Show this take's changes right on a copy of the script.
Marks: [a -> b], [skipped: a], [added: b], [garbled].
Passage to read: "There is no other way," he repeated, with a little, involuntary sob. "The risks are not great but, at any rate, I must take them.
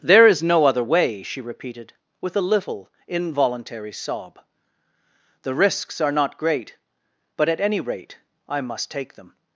"There is no other way," [he -> she] repeated, with a little, involuntary sob. "The risks are not great but, at any rate, I must take them.